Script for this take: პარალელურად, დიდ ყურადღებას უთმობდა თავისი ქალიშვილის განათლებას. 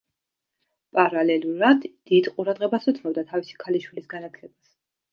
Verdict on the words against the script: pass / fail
pass